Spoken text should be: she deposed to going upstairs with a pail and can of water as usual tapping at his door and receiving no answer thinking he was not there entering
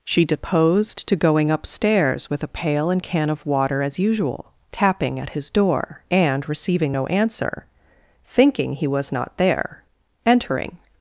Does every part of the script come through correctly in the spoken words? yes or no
yes